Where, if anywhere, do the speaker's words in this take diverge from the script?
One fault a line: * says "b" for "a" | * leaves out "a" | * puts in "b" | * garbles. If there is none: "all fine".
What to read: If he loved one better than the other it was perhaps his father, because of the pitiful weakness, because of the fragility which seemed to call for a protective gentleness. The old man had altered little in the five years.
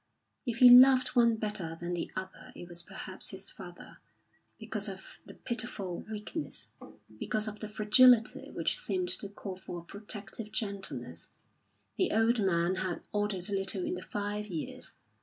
all fine